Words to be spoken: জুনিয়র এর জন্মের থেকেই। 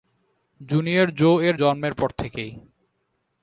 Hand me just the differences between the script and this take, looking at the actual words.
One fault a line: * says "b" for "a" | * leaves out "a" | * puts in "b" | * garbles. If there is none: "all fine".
* puts in "জো"
* puts in "পর"